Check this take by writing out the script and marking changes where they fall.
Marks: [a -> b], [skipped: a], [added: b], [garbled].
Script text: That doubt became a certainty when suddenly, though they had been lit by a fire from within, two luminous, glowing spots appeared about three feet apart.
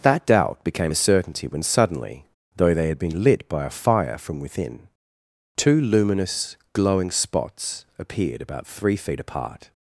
That doubt became a certainty when suddenly, though they had been lit by a fire from within, two luminous, glowing spots appeared about three feet apart.